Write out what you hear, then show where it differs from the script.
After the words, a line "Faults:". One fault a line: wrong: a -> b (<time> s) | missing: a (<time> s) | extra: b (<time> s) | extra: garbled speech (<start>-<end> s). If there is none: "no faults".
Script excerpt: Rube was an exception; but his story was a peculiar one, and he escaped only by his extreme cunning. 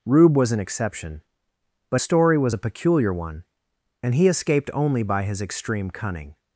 Rube was an exception; but story was a peculiar one, and he escaped only by his extreme cunning.
Faults:
missing: his (2.0 s)